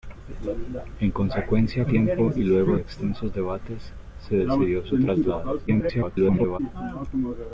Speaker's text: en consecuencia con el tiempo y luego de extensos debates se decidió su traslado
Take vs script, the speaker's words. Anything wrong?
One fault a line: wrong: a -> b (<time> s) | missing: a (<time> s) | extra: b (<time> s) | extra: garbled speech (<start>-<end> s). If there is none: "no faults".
missing: con el (1.9 s)
missing: de (2.8 s)
extra: garbled speech (5.7-6.6 s)